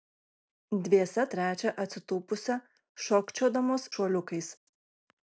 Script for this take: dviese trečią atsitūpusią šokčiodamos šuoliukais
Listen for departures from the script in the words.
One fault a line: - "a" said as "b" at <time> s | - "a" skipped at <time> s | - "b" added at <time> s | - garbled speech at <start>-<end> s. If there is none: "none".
none